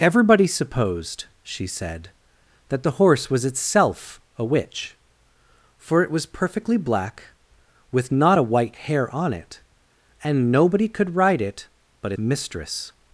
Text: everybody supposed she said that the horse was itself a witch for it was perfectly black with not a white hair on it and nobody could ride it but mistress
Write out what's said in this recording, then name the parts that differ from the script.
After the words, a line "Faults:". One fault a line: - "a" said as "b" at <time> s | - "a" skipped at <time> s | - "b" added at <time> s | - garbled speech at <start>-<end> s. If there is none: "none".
everybody supposed she said that the horse was itself a witch for it was perfectly black with not a white hair on it and nobody could ride it but mistress
Faults:
none